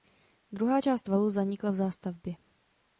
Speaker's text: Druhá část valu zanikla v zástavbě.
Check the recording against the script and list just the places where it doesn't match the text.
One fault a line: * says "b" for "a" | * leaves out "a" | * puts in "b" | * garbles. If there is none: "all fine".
all fine